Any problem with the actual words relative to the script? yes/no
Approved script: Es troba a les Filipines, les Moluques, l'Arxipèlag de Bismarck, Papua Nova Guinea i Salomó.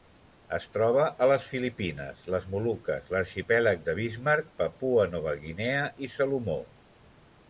no